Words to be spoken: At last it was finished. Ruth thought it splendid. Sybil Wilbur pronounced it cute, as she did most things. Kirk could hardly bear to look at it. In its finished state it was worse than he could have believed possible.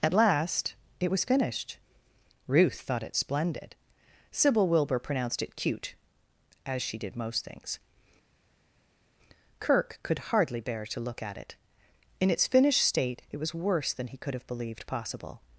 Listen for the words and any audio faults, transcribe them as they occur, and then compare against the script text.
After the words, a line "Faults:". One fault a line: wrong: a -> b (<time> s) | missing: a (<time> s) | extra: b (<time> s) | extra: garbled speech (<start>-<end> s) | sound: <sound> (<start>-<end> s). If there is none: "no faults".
At last it was finished. Ruth thought it splendid. Sybil Wilbur pronounced it cute, as she did most things. Kirk could hardly bear to look at it. In its finished state it was worse than he could have believed possible.
Faults:
no faults